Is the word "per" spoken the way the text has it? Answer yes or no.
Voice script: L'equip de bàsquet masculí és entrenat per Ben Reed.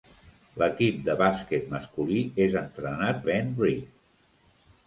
no